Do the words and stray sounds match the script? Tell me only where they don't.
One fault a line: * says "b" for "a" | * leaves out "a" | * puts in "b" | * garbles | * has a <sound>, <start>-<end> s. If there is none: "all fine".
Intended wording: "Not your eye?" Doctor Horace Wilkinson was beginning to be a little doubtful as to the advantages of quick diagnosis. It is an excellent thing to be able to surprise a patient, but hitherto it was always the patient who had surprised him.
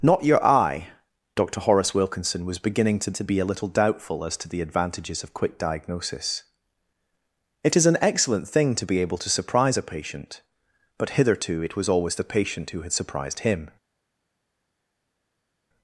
* puts in "to"